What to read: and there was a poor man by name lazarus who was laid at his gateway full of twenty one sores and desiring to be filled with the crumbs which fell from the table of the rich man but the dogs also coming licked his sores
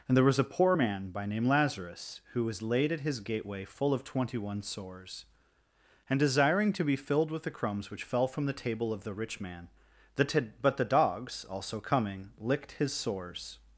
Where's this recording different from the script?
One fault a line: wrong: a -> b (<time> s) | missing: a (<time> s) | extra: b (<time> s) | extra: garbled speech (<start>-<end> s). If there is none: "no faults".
extra: the t (10.1 s)